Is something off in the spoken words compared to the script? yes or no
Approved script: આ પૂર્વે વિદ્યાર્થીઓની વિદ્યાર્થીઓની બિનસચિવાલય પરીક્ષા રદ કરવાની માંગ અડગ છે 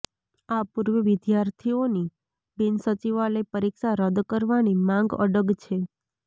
yes